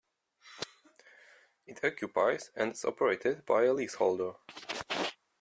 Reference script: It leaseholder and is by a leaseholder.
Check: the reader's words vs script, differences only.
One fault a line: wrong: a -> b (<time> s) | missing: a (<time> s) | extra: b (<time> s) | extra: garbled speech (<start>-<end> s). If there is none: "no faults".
wrong: leaseholder -> occupies (1.8 s)
extra: operated (2.8 s)